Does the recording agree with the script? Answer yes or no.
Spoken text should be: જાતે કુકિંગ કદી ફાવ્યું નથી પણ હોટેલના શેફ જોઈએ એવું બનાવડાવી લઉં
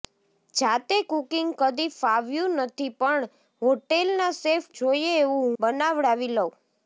yes